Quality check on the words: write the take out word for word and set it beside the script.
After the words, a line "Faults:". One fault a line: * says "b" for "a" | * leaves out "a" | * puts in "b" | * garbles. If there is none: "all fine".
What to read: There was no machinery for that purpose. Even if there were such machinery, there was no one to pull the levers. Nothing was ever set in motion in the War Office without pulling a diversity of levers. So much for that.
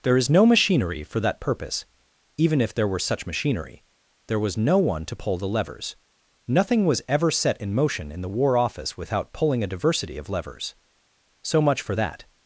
There is no machinery for that purpose. Even if there were such machinery, there was no one to pull the levers. Nothing was ever set in motion in the War Office without pulling a diversity of levers. So much for that.
Faults:
* says "is" for "was"